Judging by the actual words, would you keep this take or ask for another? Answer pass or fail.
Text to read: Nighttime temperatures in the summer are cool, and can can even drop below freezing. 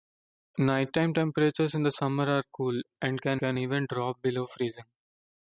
pass